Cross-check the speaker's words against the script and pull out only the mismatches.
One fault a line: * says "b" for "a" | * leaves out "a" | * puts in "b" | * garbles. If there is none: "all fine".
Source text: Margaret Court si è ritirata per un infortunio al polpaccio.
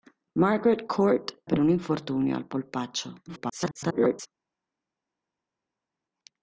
* leaves out "si è ritirata"
* garbles